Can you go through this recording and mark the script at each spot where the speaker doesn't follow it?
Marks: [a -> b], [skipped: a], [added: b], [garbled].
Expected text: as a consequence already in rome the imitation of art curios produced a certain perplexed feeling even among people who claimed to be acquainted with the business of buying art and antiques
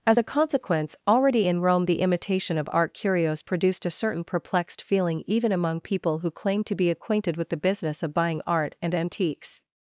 as a consequence already in rome the imitation of art curios produced a certain perplexed feeling even among people who claimed to be acquainted with the business of buying art and antiques